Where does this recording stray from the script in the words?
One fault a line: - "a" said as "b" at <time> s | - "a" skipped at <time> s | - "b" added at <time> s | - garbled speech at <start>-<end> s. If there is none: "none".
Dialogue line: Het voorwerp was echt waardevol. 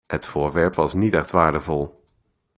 - "niet" added at 0.9 s